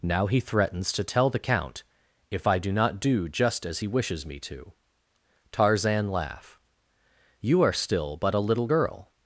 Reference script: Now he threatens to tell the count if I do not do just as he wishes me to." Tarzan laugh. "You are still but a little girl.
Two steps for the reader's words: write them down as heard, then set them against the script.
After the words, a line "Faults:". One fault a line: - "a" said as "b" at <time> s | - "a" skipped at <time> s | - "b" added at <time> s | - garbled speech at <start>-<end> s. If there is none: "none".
Now he threatens to tell the count if I do not do just as he wishes me to." Tarzan laugh. "You are still but a little girl.
Faults:
none